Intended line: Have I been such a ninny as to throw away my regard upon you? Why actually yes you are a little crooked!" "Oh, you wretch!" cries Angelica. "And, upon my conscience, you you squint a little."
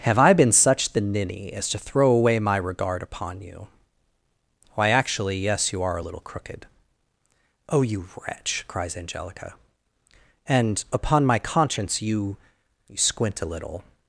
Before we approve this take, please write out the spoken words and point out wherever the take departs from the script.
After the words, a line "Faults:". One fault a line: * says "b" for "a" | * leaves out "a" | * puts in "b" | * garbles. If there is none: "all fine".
Have I been such the ninny as to throw away my regard upon you? Why actually yes you are a little crooked!" "Oh, you wretch!" cries Angelica. "And, upon my conscience, you you squint a little."
Faults:
* says "the" for "a"